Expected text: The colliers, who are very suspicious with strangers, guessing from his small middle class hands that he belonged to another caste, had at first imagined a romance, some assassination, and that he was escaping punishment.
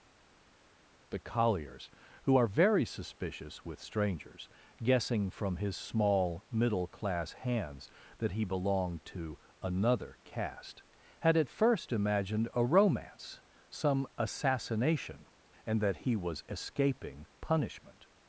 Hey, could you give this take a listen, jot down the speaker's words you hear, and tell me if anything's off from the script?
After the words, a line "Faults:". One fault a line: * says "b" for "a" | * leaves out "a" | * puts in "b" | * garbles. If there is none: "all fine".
The colliers, who are very suspicious with strangers, guessing from his small middle class hands that he belonged to another caste, had at first imagined a romance, some assassination, and that he was escaping punishment.
Faults:
all fine